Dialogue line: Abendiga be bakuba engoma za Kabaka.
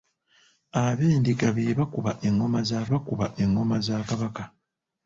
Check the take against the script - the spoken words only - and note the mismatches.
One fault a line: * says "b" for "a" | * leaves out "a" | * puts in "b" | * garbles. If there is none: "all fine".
* puts in "bakuba engoma za"